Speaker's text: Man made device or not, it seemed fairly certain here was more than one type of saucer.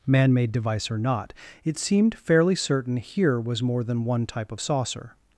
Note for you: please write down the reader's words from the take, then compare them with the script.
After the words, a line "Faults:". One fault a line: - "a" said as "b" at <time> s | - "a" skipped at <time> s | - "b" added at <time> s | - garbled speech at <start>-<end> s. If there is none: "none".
Man made device or not, it seemed fairly certain here was more than one type of saucer.
Faults:
none